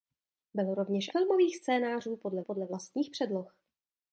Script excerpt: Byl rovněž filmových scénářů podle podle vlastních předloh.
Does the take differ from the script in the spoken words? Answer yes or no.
no